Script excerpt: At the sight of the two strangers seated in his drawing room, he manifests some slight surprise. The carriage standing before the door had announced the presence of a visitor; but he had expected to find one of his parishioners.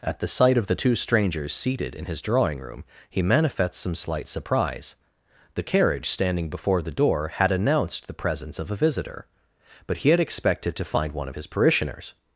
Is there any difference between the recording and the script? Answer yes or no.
no